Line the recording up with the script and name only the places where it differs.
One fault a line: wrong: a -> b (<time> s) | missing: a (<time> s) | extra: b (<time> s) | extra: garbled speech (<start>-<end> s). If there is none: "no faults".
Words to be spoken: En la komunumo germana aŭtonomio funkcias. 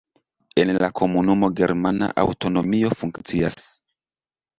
no faults